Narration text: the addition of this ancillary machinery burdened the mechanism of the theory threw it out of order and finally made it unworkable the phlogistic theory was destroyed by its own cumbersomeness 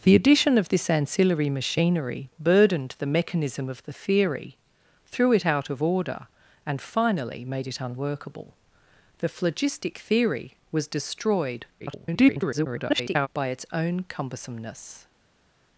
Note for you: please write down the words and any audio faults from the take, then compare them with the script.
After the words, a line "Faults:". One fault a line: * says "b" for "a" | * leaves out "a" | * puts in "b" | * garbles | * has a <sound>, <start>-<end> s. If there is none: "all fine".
the addition of this ancillary machinery burdened the mechanism of the theory threw it out of order and finally made it unworkable the phlogistic theory was destroyed [garbled] by its own cumbersomeness
Faults:
* garbles